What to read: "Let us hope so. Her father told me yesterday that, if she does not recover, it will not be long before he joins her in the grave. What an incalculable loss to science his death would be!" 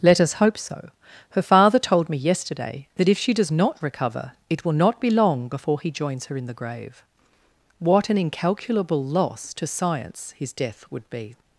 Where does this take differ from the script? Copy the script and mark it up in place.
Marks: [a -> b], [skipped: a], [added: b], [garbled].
"Let us hope so. Her father told me yesterday that, if she does not recover, it will not be long before he joins her in the grave. What an incalculable loss to science his death would be!"